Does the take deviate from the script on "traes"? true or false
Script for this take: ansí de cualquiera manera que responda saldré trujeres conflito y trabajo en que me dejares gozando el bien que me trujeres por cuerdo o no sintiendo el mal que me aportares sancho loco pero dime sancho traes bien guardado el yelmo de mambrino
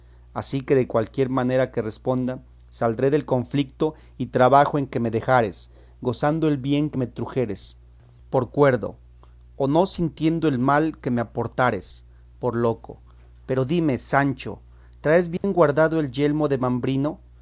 false